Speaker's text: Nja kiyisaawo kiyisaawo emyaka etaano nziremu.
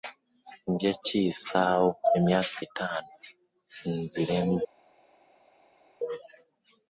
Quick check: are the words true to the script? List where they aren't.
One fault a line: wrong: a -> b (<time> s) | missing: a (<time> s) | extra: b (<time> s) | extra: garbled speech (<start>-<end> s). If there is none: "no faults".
missing: kiyisaawo (1.9 s)